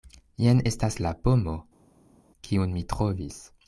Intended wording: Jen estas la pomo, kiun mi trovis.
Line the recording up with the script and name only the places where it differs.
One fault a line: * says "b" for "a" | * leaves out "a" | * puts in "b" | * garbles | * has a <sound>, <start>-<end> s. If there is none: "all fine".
all fine